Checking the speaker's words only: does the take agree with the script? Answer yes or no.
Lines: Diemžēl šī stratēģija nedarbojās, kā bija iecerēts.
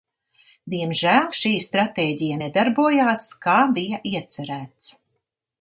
yes